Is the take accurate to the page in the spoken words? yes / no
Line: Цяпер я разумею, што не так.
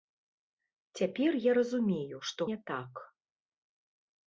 yes